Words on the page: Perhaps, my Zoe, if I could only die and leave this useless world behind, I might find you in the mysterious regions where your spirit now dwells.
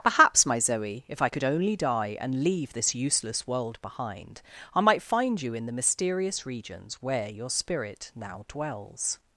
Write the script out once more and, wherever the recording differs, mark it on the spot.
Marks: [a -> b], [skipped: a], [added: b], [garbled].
Perhaps, my Zoe, if I could only die and leave this useless world behind, I might find you in the mysterious regions where your spirit now dwells.